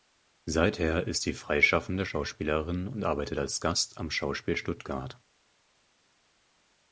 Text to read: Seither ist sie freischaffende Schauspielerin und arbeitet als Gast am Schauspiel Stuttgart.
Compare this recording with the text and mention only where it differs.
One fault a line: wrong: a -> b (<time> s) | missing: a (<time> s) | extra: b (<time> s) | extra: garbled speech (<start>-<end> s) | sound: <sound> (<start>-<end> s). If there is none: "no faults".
no faults